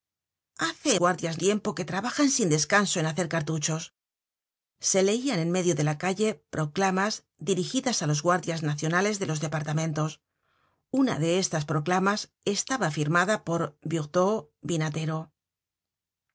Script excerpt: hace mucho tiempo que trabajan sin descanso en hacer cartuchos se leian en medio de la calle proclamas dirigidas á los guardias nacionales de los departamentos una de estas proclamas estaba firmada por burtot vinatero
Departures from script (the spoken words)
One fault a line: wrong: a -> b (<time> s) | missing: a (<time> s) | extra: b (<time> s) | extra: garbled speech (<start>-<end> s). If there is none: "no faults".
wrong: mucho -> guardias (1.0 s)